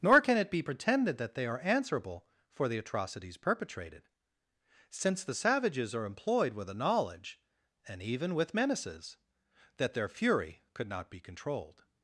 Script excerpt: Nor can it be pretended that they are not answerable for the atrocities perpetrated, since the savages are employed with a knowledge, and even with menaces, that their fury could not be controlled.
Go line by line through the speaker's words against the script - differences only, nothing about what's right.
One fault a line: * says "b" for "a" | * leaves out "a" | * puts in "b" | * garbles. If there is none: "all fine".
* leaves out "not"